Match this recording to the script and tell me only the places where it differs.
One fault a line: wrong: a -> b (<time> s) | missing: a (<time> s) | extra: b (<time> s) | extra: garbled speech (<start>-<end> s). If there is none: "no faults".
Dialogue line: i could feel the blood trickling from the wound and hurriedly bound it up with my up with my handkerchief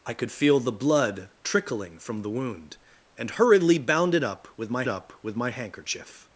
no faults